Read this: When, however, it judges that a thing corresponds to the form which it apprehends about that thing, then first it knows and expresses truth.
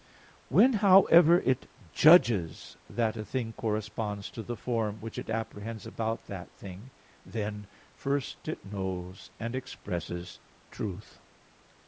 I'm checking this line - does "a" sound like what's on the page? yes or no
yes